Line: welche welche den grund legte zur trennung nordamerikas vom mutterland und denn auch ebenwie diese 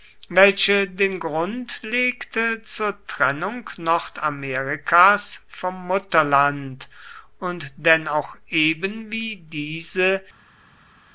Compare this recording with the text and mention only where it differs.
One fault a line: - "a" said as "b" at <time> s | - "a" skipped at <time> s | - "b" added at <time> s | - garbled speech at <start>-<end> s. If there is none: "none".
- "welche" skipped at 0.9 s